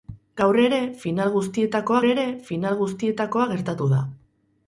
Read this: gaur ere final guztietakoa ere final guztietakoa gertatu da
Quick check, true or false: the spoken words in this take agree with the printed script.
true